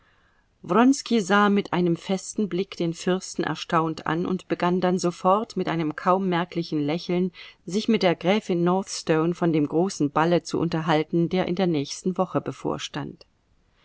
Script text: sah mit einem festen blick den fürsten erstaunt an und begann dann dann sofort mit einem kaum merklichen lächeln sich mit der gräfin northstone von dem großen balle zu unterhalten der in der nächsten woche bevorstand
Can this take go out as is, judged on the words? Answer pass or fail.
fail